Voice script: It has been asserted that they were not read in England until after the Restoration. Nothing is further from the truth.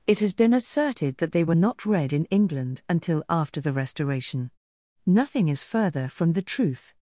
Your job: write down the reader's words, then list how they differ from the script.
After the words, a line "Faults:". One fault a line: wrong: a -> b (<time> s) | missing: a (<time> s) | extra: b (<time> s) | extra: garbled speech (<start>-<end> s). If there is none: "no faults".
It has been asserted that they were not read in England until after the Restoration. Nothing is further from the truth.
Faults:
no faults